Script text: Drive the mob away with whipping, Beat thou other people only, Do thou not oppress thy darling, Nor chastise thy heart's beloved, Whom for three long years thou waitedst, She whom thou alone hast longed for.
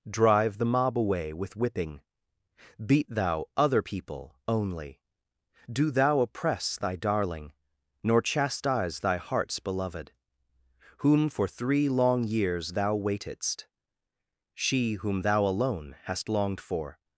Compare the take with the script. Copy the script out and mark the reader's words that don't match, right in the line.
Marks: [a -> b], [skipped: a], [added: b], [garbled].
Drive the mob away with whipping, Beat thou other people only, Do thou [skipped: not] oppress thy darling, Nor chastise thy heart's beloved, Whom for three long years thou waitedst, She whom thou alone hast longed for.